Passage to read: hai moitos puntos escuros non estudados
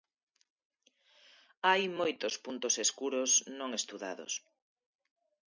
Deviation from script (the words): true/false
false